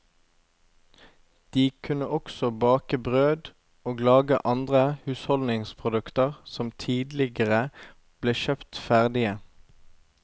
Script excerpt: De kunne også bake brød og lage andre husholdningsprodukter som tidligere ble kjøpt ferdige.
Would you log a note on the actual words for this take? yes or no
no